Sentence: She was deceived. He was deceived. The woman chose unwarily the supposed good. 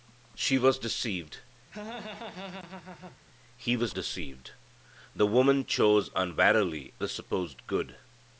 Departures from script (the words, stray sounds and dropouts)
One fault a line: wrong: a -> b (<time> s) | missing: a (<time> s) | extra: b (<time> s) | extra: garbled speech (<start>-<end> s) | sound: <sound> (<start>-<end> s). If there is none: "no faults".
sound: laugh (1.7-3.2 s)